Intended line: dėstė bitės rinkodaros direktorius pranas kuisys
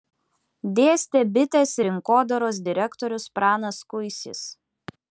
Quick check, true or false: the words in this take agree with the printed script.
true